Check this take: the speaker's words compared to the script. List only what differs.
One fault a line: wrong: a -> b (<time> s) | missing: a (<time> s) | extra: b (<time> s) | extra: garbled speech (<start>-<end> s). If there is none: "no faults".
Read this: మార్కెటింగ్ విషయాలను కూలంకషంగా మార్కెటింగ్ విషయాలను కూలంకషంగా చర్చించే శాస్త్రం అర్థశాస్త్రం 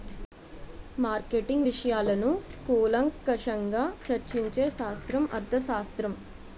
missing: మార్కెటింగ్ విషయాలను కూలంకషంగా (3.8 s)